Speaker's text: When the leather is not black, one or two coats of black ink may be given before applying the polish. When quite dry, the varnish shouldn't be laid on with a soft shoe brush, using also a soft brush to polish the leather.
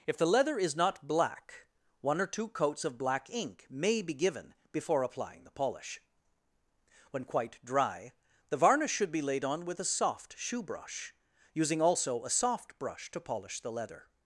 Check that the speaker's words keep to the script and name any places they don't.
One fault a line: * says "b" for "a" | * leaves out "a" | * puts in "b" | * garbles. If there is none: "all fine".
* says "If" for "When"
* says "should" for "shouldn't"